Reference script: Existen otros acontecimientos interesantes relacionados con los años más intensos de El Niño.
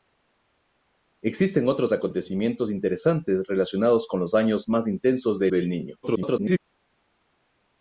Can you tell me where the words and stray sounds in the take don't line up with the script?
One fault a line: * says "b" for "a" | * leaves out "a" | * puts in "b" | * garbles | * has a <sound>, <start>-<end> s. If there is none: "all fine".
* puts in "de"
* garbles